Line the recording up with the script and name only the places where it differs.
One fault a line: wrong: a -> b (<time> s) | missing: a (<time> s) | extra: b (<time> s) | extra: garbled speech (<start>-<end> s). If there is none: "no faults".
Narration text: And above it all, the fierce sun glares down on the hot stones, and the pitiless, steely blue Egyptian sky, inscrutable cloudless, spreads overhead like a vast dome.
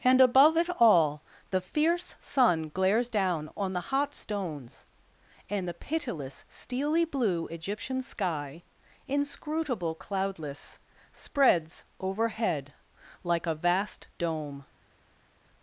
no faults